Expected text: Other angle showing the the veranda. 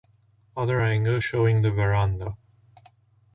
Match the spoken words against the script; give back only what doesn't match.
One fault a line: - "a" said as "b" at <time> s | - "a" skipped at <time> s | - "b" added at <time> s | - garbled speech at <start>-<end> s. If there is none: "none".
- "the" skipped at 1.7 s